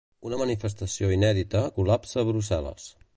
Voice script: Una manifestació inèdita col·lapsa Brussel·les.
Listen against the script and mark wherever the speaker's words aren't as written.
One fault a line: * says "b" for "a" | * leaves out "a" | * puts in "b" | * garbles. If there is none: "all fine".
all fine